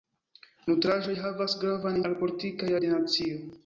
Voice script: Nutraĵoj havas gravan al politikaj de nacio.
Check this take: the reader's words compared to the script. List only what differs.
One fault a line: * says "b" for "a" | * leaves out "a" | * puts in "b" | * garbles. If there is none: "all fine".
all fine